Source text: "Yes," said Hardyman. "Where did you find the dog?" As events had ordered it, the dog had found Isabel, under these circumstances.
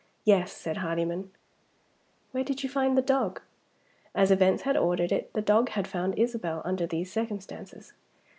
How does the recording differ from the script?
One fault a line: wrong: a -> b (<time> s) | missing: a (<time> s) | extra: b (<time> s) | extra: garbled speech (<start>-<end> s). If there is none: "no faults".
no faults